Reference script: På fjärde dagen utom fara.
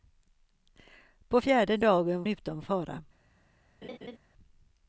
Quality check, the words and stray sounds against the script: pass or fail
fail